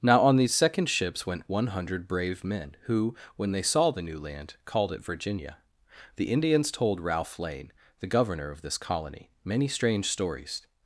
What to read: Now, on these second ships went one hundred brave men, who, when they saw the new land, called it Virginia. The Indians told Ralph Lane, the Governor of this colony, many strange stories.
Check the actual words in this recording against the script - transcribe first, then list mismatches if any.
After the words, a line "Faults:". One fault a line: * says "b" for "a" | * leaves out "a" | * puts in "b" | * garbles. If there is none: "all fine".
Now, on these second ships went one hundred brave men, who, when they saw the new land, called it Virginia. The Indians told Ralph Lane, the Governor of this colony, many strange stories.
Faults:
all fine